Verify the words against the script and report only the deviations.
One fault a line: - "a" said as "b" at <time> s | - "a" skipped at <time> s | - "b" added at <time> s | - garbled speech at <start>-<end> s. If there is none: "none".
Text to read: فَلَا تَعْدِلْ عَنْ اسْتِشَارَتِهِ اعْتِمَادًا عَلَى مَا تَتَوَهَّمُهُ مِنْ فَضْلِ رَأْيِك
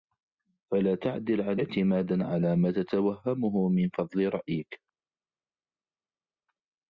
- "اسْتِشَارَتِهِ" skipped at 1.6 s